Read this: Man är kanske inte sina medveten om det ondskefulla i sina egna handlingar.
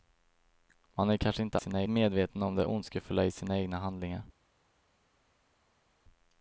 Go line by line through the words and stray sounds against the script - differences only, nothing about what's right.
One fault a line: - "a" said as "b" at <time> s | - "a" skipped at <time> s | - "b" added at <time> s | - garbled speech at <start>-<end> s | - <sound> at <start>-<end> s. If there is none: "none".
none